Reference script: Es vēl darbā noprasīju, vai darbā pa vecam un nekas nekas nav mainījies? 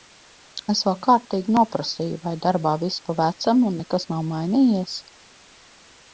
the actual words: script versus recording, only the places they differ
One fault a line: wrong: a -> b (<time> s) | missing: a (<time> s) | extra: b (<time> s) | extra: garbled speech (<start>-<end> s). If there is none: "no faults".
wrong: darbā -> kārtīgi (1.1 s)
extra: viss (2.9 s)
missing: nekas (4.1 s)